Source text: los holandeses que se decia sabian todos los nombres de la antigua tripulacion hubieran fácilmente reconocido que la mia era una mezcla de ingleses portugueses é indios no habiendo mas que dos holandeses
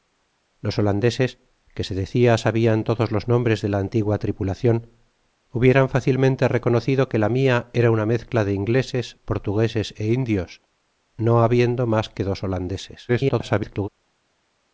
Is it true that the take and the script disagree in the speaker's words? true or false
true